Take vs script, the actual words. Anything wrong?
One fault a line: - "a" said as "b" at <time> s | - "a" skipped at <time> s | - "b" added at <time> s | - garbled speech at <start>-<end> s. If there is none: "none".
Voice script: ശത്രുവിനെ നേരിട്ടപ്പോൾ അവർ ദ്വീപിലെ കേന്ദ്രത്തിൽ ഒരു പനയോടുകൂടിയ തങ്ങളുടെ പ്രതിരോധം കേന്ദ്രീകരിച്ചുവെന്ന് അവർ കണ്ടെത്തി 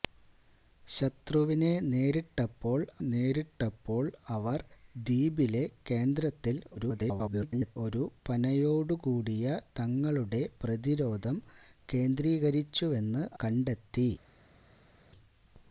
- "നേരിട്ടപ്പോൾ" added at 3.1 s
- garbled speech at 6.8-7.8 s
- "അവർ" skipped at 13.2 s